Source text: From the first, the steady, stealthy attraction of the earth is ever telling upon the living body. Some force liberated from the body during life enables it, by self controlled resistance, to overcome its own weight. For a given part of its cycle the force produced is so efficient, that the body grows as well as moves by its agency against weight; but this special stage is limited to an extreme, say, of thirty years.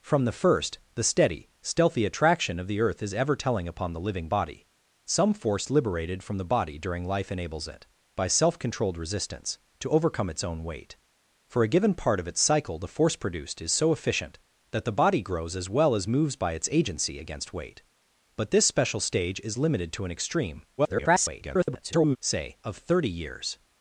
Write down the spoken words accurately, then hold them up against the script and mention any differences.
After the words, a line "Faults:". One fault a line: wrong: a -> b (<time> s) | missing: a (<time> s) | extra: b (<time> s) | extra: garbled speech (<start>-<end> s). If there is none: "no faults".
From the first, the steady, stealthy attraction of the earth is ever telling upon the living body. Some force liberated from the body during life enables it, by self controlled resistance, to overcome its own weight. For a given part of its cycle the force produced is so efficient, that the body grows as well as moves by its agency against weight; but this special stage is limited to an extreme, [garbled] say, of thirty years.
Faults:
extra: garbled speech (20.8-22.2 s)